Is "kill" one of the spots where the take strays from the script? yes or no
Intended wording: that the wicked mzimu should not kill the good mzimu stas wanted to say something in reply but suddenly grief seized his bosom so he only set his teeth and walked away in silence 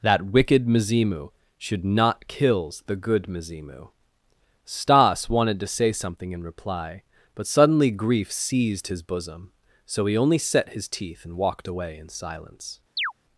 yes